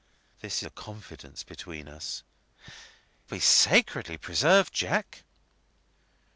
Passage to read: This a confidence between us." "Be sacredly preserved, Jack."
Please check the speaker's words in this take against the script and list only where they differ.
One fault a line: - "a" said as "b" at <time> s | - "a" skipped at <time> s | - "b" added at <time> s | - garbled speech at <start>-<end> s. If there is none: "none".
none